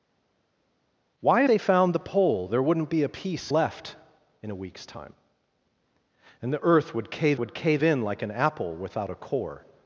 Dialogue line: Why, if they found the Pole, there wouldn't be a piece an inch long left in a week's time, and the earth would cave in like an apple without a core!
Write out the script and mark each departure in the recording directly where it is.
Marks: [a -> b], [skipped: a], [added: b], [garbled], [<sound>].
Why, [skipped: if] they found the Pole, there wouldn't be a piece [skipped: an inch long] left in a week's time, and the earth would cave [added: would cave] in like an apple without a core!